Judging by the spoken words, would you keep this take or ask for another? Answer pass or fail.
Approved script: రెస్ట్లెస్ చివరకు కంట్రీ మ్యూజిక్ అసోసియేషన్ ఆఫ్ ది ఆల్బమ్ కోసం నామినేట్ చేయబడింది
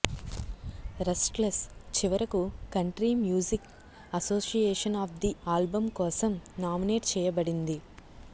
pass